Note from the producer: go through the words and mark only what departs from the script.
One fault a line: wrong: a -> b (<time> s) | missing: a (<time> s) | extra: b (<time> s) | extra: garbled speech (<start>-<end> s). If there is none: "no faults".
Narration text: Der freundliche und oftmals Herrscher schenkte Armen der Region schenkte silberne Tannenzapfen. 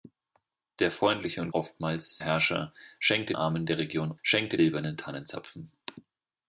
no faults